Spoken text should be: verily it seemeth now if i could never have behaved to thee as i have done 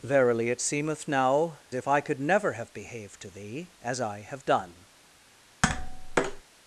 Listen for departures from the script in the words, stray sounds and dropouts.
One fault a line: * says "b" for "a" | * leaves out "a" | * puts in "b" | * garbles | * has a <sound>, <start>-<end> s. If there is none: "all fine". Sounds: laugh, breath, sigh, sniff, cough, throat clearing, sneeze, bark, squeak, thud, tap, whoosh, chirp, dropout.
* has a tap, 5.6-6.4 s